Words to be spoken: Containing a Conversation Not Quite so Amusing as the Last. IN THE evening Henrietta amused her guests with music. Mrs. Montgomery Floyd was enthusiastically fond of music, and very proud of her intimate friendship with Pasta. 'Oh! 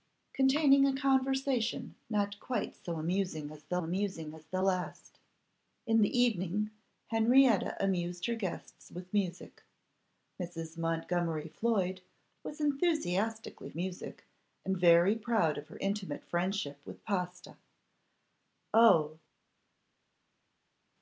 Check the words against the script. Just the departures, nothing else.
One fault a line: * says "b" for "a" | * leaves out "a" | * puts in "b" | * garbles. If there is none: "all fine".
* puts in "Amusing as the"
* leaves out "fond of"